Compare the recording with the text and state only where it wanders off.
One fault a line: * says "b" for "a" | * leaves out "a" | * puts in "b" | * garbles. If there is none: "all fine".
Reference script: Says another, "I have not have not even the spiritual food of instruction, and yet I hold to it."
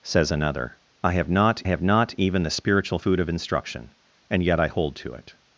all fine